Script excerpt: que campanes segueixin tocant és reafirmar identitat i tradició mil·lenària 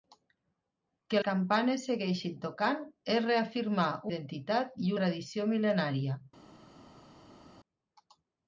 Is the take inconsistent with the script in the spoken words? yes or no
no